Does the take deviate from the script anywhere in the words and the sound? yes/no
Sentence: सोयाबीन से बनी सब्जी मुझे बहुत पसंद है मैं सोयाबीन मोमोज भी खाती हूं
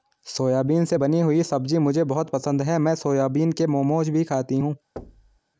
yes